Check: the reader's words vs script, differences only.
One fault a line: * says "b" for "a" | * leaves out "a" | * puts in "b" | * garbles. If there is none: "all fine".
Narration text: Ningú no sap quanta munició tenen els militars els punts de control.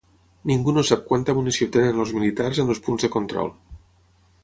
* puts in "en"